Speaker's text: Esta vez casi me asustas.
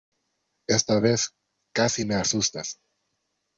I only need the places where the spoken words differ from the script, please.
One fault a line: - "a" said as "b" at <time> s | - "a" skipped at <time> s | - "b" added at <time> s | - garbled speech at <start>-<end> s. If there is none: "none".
none